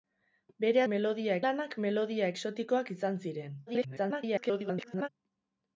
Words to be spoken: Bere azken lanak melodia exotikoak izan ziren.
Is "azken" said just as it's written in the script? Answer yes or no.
no